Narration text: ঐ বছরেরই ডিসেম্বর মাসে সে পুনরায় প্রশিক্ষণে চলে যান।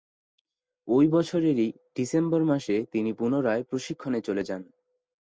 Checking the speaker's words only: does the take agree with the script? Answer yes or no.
no